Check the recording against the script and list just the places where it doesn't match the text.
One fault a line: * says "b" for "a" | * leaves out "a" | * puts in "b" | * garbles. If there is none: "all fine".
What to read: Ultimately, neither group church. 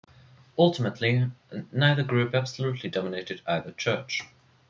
* puts in "absolutely dominated either"